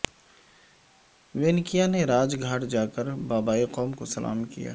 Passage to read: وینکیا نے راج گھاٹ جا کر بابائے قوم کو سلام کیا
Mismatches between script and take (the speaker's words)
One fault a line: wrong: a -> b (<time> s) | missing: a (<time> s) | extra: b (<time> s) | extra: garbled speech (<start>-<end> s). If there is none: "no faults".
no faults